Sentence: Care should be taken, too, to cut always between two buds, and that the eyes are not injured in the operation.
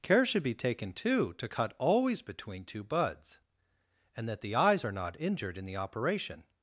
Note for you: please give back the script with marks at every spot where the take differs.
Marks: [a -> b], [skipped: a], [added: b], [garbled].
Care should be taken, too, to cut always between two buds, and that the eyes are not injured in the operation.